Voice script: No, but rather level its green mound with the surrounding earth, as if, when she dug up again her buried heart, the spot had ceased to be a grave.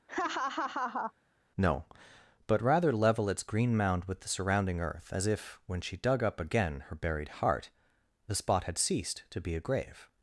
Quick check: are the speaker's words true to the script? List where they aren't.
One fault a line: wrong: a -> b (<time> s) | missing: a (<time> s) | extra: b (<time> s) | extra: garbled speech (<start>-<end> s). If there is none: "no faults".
no faults